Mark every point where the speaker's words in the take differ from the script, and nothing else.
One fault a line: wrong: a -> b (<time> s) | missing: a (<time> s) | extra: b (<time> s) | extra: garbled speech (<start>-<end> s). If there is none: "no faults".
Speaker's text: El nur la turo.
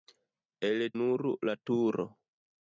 no faults